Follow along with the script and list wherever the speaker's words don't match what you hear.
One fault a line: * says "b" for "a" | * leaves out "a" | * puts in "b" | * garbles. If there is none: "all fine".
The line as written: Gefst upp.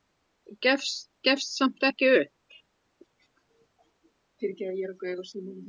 * puts in "samt ekki"